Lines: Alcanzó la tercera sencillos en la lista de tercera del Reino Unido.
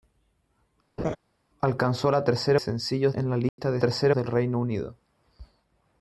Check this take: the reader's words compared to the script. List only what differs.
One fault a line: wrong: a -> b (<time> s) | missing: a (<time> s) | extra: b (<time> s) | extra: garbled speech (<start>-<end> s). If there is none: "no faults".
no faults